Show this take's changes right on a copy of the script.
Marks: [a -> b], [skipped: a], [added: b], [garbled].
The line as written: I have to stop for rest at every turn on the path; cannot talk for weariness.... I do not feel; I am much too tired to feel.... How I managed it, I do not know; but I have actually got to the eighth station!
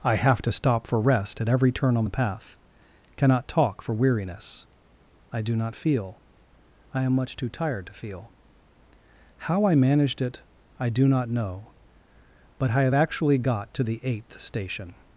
I have to stop for rest at every turn on the path; cannot talk for weariness.... I do not feel; I am much too tired to feel.... How I managed it, I do not know; but I have actually got to the eighth station!